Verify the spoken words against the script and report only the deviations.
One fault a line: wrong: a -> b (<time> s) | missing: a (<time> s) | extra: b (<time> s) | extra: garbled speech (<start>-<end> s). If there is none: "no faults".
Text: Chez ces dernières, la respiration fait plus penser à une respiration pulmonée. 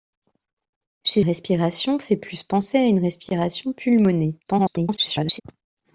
missing: ces dernières la (1.2 s)
extra: garbled speech (4.4-5.4 s)